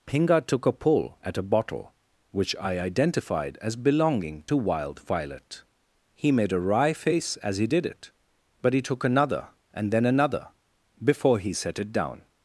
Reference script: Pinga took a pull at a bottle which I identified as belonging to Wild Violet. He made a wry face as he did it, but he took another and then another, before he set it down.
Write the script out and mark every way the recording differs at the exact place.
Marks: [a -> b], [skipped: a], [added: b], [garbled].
Pinga took a pull at a bottle which I identified as belonging to Wild Violet. He made a wry face as he did it, but he took another and then another, before he set it down.